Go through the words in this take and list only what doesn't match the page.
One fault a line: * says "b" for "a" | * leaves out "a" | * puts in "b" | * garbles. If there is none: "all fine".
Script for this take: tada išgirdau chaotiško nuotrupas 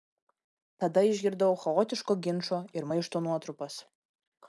* puts in "ginčo ir maišto"